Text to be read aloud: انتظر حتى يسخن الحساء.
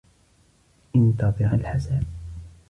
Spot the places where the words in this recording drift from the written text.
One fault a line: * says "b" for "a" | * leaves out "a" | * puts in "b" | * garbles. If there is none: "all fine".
* leaves out "حتى يسخن"